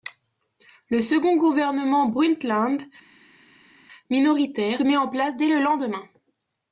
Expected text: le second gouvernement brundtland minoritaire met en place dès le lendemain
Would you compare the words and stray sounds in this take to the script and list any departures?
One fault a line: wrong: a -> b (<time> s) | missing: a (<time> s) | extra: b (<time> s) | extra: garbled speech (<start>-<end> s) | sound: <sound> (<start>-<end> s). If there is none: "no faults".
no faults